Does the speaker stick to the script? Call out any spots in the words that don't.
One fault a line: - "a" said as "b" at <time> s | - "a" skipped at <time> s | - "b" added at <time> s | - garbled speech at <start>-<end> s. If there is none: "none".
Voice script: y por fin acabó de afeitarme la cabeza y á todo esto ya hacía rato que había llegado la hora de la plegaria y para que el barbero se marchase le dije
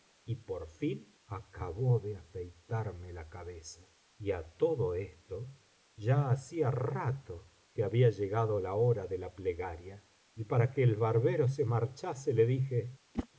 none